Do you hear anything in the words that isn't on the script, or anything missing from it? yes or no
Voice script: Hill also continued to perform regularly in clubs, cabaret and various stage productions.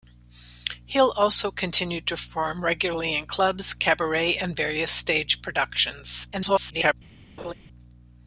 yes